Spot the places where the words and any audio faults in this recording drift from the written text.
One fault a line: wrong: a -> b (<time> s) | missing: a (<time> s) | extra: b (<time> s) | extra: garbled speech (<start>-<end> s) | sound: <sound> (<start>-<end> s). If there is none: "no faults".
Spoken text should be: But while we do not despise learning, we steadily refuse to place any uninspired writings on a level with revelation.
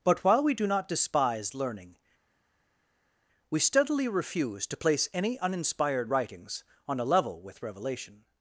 no faults